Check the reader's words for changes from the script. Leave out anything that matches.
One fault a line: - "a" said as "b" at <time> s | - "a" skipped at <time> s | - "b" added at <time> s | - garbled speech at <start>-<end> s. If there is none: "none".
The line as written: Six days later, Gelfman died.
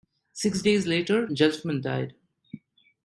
none